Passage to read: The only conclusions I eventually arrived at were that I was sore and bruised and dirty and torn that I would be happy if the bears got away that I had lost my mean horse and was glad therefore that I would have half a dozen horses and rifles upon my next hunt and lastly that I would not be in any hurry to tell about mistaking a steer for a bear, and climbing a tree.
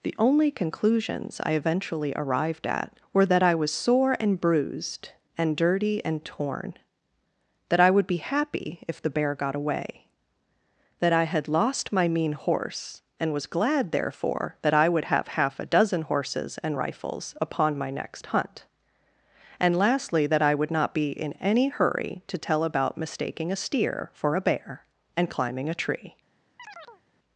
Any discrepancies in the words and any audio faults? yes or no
yes